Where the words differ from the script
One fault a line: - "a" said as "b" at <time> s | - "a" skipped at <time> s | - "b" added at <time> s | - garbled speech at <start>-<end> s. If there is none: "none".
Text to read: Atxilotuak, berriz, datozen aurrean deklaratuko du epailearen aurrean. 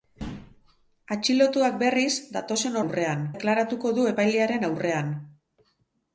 none